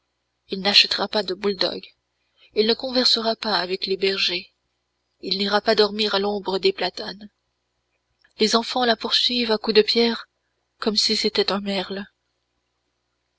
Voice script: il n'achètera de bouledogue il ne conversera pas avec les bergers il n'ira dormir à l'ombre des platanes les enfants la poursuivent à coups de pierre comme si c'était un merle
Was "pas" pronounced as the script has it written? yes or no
yes